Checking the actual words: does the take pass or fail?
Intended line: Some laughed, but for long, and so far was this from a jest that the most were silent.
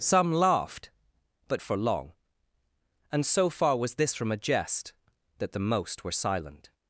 pass